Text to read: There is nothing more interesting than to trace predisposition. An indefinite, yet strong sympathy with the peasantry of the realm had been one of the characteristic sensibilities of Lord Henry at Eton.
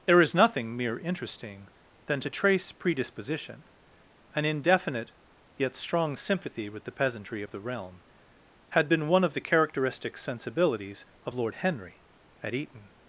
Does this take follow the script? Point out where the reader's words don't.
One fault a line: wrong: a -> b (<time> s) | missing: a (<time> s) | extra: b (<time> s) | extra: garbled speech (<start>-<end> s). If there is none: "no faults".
wrong: more -> mere (0.8 s)